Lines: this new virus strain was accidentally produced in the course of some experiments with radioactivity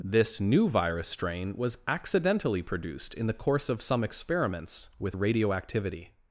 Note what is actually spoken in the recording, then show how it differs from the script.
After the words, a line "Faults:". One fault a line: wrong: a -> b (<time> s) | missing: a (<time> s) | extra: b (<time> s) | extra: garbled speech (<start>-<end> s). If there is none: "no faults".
this new virus strain was accidentally produced in the course of some experiments with radioactivity
Faults:
no faults